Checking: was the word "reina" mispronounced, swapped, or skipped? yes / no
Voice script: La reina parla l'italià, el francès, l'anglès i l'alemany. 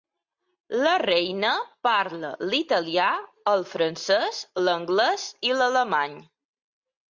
no